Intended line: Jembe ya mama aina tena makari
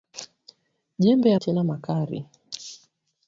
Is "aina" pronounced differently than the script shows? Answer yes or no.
yes